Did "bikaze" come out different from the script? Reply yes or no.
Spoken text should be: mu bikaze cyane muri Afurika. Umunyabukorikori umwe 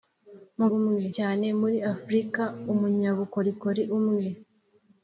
yes